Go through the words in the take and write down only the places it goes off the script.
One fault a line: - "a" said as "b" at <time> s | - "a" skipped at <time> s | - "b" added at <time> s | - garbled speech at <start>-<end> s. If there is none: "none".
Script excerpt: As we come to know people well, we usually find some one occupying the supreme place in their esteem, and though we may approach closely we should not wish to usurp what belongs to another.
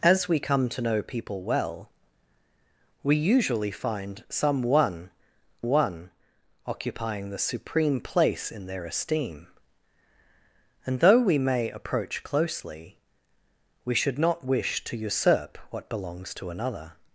- "one" added at 5.6 s